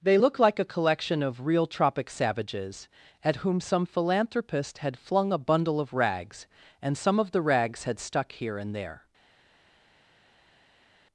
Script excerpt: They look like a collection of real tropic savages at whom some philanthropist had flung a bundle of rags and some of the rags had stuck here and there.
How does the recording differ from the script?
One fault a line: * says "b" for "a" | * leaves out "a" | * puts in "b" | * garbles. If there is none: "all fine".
all fine